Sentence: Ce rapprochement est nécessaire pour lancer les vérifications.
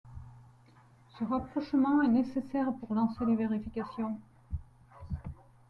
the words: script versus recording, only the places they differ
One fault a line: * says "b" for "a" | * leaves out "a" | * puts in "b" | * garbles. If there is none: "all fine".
all fine